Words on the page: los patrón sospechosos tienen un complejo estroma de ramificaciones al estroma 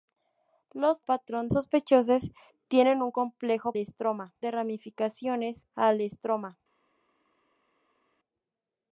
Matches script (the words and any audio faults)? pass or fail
pass